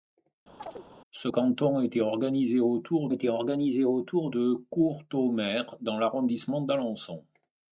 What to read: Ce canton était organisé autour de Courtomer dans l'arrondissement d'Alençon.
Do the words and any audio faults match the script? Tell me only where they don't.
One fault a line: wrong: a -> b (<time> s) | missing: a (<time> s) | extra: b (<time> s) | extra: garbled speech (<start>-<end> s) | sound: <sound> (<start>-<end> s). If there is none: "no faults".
sound: chirp (0.6-0.9 s)
extra: était organisé autour (3.1 s)